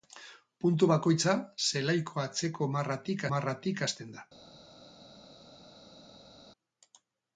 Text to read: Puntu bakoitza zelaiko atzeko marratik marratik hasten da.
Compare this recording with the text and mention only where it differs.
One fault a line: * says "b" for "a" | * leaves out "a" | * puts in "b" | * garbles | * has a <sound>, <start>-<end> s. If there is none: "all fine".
all fine